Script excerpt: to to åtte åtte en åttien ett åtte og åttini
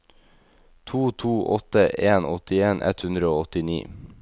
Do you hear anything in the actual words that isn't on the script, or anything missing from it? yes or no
yes